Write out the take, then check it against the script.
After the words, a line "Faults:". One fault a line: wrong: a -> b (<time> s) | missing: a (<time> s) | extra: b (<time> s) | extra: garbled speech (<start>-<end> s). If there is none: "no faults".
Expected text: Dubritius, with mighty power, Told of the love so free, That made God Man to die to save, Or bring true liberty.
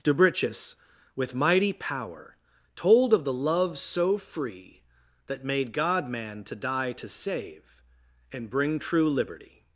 Dubritius, with mighty power, Told of the love so free, That made God Man to die to save, And bring true liberty.
Faults:
wrong: Or -> And (8.3 s)